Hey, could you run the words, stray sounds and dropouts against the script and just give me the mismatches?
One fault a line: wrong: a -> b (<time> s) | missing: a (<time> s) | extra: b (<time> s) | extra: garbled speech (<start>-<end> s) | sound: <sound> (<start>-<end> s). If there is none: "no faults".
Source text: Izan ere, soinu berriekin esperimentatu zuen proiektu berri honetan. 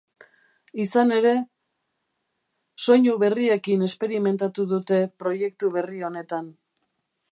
wrong: zuen -> dute (4.7 s)